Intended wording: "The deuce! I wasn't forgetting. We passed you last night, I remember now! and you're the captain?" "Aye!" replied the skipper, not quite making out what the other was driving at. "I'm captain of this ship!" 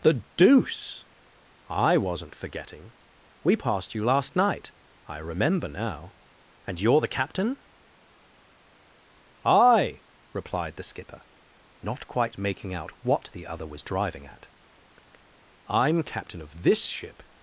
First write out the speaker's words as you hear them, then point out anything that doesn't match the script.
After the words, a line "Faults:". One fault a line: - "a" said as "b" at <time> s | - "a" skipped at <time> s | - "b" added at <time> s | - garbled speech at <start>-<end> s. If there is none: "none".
"The deuce! I wasn't forgetting. We passed you last night, I remember now! and you're the captain?" "Aye!" replied the skipper, not quite making out what the other was driving at. "I'm captain of this ship!"
Faults:
none